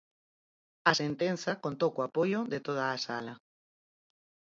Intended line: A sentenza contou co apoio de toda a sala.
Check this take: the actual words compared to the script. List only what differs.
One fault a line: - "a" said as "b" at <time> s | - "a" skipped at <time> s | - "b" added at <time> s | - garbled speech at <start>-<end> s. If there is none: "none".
none